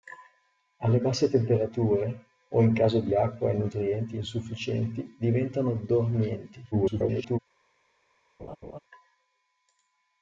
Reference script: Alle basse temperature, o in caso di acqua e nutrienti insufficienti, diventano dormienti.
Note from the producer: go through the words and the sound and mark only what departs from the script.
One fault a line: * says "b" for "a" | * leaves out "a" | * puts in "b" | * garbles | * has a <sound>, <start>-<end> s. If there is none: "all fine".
* garbles
* has a laugh, 8.4-8.8 s